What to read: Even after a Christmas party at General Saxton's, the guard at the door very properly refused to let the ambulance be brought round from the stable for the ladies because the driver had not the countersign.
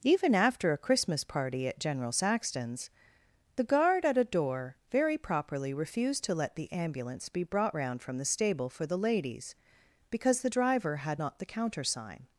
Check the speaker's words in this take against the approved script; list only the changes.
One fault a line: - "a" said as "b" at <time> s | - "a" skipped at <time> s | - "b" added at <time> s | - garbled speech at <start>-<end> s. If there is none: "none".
- "the" said as "a" at 4.2 s